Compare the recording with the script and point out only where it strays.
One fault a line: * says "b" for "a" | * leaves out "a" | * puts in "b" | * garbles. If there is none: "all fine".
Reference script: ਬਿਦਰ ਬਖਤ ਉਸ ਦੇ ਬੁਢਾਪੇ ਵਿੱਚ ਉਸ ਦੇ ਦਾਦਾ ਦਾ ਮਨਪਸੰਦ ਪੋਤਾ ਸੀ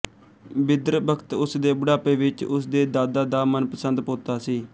all fine